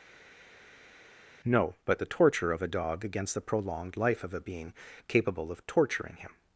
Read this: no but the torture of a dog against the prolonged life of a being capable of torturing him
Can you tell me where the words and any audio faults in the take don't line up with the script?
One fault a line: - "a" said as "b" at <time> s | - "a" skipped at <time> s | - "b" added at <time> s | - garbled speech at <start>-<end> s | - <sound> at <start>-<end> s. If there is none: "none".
none